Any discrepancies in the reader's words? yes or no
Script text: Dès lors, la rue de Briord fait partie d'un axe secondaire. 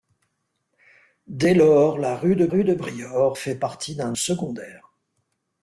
yes